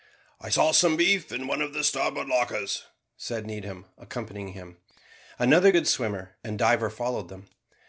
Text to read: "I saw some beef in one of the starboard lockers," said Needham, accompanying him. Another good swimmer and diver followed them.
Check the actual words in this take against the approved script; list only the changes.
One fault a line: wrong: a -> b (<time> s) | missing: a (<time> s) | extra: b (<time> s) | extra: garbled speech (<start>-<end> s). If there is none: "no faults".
no faults